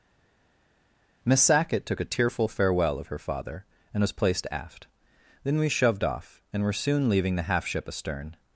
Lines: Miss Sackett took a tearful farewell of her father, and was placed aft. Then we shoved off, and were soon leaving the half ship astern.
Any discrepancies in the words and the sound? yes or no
no